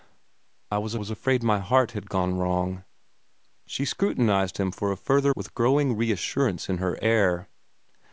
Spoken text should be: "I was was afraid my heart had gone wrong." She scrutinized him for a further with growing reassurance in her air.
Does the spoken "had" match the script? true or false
true